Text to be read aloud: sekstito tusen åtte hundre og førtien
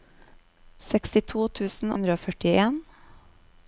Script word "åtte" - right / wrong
wrong